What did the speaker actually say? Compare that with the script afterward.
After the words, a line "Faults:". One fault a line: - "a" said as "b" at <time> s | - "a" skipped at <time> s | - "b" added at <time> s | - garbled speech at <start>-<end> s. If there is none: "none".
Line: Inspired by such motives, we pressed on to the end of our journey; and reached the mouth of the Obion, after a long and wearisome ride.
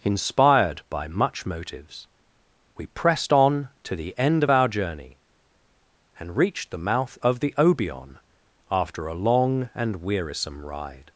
Inspired by much motives, we pressed on to the end of our journey; and reached the mouth of the Obion, after a long and wearisome ride.
Faults:
- "such" said as "much" at 1.1 s